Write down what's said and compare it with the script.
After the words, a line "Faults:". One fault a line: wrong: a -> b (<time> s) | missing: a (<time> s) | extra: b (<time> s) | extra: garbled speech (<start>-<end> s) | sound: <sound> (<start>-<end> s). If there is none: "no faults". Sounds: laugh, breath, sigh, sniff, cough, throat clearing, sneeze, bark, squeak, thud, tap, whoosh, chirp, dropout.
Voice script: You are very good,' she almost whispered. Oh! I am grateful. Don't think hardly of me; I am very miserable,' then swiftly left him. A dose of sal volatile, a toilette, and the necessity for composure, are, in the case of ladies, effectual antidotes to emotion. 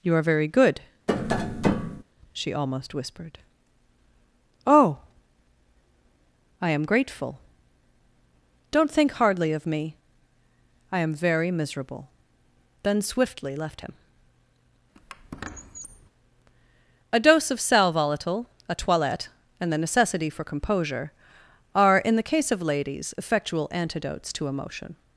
You are very good,' she almost whispered. Oh! I am grateful. Don't think hardly of me; I am very miserable,' then swiftly left him. A dose of sal volatile, a toilette, and the necessity for composure, are, in the case of ladies, effectual antidotes to emotion.
Faults:
sound: tap (1.1-2.0 s)
sound: squeak (14.9-16.1 s)